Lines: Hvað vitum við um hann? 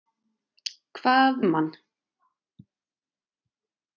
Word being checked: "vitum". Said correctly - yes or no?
no